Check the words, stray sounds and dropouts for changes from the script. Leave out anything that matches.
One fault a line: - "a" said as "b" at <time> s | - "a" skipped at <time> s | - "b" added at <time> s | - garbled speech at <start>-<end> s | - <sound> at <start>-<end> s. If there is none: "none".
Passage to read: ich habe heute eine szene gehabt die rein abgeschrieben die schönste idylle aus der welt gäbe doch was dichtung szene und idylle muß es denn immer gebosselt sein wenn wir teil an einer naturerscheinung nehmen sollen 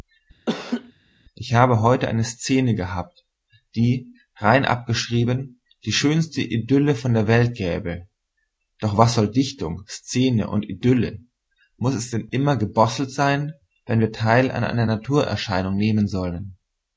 - laugh at 0.5-0.9 s
- "aus" said as "von" at 6.9 s
- "soll" added at 9.1 s